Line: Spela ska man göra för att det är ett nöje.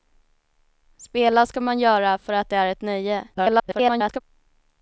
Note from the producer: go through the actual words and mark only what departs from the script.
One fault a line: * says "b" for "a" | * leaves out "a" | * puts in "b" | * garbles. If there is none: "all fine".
* garbles